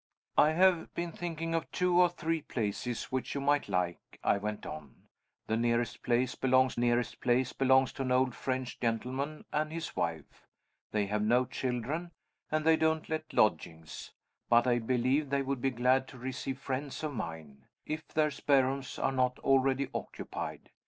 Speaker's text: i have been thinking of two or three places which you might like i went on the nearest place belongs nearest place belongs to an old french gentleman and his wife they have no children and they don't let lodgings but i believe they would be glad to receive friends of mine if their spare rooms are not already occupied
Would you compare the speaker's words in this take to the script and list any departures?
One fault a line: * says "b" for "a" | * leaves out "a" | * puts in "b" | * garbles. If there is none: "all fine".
all fine